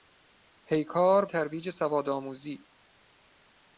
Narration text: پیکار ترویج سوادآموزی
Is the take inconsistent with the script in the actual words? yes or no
no